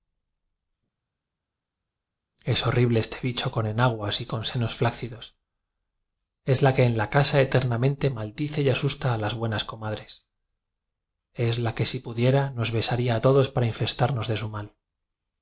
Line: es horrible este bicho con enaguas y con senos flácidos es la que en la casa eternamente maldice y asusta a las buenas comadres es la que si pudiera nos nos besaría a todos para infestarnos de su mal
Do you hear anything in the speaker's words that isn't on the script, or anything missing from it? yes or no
yes